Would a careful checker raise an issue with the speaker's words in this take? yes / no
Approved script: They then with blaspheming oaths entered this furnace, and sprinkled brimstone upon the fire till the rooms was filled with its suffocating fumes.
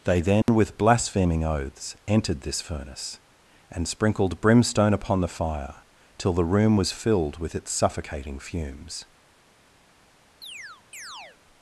yes